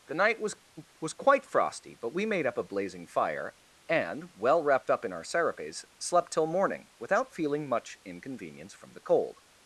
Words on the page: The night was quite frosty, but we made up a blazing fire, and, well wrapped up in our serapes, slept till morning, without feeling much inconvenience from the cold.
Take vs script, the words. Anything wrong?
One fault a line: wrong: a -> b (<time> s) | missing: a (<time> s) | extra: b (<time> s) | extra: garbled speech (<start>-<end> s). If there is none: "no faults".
extra: was (1.0 s)